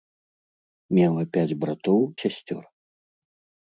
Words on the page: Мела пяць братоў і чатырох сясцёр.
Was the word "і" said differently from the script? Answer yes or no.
yes